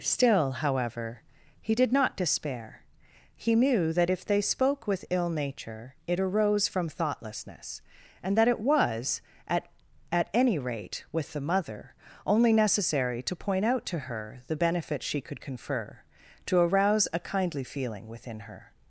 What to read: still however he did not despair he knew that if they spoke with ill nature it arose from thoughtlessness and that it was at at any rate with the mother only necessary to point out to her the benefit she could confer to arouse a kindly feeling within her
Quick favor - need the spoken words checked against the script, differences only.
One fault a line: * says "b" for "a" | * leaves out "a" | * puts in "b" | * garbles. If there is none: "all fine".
all fine